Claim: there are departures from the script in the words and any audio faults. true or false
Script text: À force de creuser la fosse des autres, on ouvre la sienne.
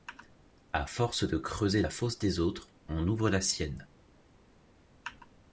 false